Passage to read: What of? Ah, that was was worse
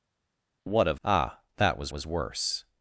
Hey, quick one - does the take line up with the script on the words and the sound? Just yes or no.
yes